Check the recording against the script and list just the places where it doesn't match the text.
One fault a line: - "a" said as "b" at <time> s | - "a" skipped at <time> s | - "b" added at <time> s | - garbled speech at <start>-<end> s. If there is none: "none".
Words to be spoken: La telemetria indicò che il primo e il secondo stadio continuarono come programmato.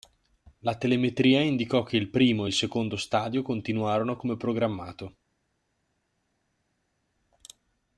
none